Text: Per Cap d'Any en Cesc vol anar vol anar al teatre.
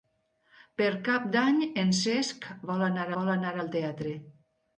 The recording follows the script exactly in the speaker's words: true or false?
true